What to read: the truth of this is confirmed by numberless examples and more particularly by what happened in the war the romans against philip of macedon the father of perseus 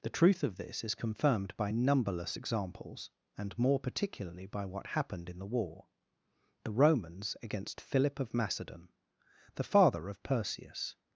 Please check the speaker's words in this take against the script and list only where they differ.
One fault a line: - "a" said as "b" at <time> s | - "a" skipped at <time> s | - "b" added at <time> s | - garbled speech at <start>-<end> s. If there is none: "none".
none